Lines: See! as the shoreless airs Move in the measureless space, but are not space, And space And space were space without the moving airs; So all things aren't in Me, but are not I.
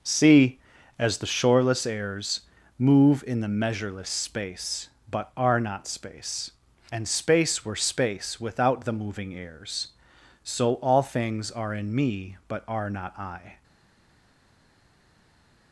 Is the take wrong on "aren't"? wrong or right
wrong